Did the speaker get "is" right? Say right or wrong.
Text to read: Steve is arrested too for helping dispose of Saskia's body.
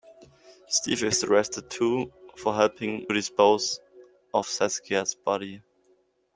right